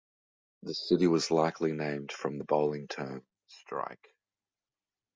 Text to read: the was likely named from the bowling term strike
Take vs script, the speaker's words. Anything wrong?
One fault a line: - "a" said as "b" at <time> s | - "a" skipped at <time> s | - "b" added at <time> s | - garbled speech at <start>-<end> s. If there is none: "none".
- "city" added at 0.7 s